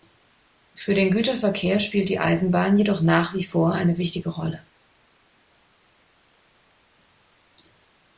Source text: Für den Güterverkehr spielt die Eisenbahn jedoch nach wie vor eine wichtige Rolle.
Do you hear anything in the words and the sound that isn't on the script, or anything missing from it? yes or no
no